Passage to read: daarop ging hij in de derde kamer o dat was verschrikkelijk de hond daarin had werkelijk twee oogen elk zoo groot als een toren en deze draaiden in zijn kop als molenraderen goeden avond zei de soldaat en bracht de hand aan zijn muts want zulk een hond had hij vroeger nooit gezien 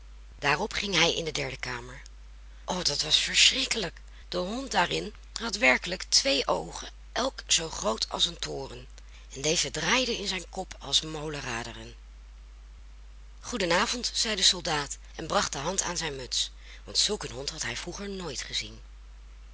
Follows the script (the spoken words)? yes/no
yes